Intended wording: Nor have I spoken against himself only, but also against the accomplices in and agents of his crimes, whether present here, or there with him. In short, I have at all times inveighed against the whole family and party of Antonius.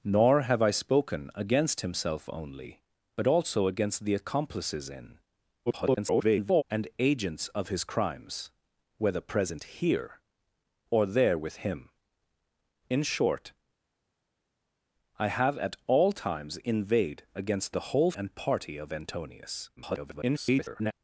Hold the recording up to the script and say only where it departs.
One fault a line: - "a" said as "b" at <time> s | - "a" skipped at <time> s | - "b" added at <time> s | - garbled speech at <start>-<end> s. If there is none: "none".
- garbled speech at 5.7-6.6 s
- "family" skipped at 18.1 s
- garbled speech at 19.8-20.9 s